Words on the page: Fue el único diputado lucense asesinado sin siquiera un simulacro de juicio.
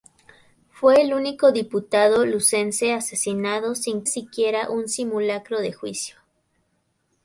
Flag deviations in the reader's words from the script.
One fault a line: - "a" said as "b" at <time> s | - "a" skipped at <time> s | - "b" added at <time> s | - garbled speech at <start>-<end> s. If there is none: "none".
none